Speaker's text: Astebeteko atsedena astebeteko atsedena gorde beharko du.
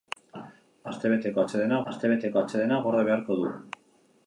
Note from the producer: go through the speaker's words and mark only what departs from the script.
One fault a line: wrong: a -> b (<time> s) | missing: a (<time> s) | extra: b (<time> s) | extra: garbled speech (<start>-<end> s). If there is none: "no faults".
no faults